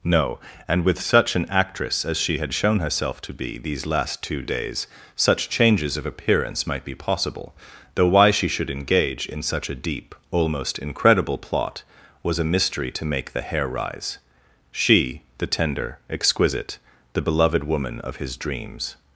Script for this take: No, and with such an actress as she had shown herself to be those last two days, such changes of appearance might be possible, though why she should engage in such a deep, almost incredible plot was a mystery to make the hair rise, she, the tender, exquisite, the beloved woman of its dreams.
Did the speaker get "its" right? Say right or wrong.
wrong